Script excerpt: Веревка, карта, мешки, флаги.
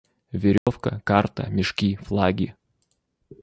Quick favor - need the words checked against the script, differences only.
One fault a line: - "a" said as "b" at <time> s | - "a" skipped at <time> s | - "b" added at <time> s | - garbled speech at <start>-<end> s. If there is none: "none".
none